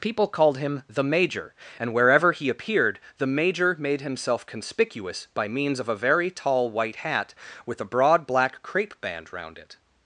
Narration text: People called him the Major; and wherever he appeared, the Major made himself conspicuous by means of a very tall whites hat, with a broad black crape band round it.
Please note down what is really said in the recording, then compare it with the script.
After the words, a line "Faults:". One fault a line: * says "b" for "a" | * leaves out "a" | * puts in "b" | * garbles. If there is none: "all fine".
People called him the Major; and wherever he appeared, the Major made himself conspicuous by means of a very tall white hat, with a broad black crape band round it.
Faults:
* says "white" for "whites"